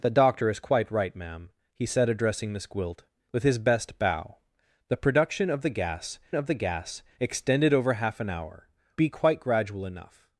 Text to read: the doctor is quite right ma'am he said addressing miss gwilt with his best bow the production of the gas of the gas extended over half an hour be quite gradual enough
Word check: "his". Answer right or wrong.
right